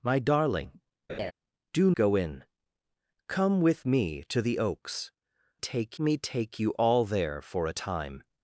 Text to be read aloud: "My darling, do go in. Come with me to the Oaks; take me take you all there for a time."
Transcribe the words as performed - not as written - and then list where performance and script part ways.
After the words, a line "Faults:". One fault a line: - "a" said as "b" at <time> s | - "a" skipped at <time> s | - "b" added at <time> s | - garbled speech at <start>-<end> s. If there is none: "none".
"My darling, do go in. Come with me to the Oaks; take me take you all there for a time."
Faults:
none